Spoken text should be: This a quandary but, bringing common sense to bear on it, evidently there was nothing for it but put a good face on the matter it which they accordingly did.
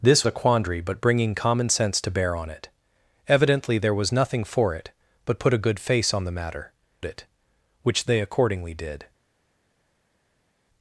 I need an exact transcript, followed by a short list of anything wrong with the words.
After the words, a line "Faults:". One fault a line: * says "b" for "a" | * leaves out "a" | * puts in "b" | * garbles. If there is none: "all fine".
This a quandary but, bringing common sense to bear on it, evidently there was nothing for it but put a good face on the matter it which they accordingly did.
Faults:
all fine